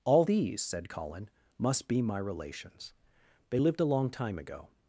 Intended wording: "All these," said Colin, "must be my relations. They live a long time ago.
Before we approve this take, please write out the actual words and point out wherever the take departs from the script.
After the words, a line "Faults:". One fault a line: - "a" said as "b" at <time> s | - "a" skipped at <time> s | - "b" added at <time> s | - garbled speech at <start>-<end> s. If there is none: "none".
"All these," said Colin, "must be my relations. They lived a long time ago.
Faults:
- "live" said as "lived" at 3.6 s